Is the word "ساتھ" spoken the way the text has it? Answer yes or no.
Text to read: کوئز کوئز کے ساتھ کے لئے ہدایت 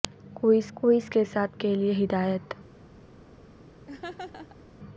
yes